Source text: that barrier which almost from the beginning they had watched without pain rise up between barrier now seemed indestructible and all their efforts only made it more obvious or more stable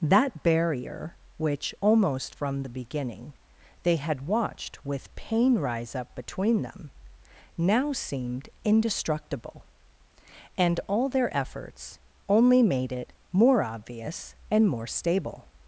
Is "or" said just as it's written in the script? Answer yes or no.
no